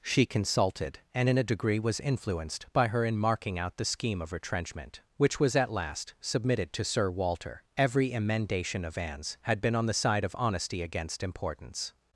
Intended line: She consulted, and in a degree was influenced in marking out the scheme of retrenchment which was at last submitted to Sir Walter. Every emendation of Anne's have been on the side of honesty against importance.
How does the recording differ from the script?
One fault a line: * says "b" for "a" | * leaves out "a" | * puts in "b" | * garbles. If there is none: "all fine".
* puts in "by her"
* says "had" for "have"